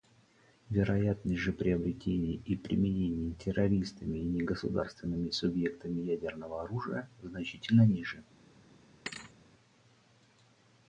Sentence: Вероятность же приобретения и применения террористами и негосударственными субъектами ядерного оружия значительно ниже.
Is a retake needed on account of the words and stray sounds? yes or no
yes